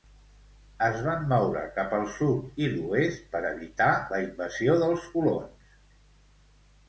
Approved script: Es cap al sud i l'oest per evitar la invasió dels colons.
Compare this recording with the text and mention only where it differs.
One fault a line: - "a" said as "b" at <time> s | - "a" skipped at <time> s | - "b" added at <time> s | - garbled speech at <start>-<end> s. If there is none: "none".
- "van moure" added at 1.1 s